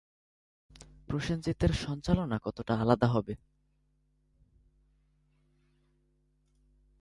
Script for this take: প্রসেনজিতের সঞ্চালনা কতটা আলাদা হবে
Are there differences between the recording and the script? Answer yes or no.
no